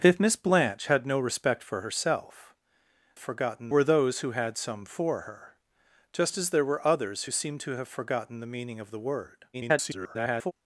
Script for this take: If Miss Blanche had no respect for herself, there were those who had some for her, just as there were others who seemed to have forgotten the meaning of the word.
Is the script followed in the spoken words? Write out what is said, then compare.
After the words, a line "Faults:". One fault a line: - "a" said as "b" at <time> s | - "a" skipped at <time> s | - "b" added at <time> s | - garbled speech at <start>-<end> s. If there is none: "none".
If Miss Blanche had no respect for herself, forgotten were those who had some for her, just as there were others who seemed to have forgotten the meaning of the word. [garbled]
Faults:
- "there" said as "forgotten" at 3.2 s
- garbled speech at 9.5-10.5 s